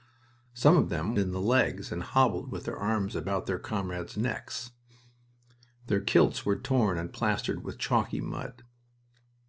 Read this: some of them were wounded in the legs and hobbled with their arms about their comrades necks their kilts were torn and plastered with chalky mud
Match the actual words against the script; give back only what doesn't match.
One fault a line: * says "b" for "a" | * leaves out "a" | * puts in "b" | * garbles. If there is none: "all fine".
* leaves out "were wounded"